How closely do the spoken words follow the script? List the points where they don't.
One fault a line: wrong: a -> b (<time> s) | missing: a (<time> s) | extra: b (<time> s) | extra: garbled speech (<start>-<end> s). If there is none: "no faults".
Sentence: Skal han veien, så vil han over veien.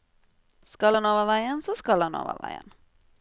extra: over (1.1 s)
wrong: vil -> skal (1.7 s)